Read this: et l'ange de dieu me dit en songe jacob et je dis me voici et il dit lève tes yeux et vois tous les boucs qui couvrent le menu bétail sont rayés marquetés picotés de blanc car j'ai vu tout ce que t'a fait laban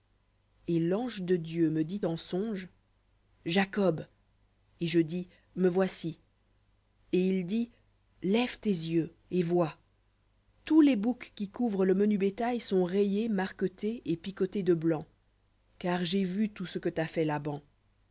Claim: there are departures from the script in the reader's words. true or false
true